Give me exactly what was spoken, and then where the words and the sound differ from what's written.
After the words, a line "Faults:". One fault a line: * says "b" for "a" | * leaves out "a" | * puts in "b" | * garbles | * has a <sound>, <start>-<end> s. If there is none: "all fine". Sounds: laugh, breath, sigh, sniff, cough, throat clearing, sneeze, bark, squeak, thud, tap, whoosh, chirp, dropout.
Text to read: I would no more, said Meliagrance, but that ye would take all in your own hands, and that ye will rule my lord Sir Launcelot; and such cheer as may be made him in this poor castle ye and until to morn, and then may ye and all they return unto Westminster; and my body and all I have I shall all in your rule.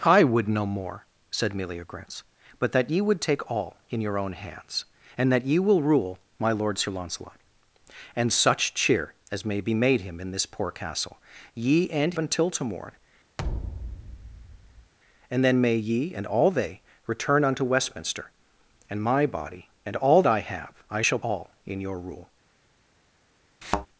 I would no more, said Meliagrance, but that ye would take all in your own hands, and that ye will rule my lord Sir Launcelot; and such cheer as may be made him in this poor castle ye and until to morn, and then may ye and all they return unto Westminster; and my body and all I have I shall all in your rule.
Faults:
* has a thud, 13.4-14.9 s
* has a thud, 23.6-23.9 s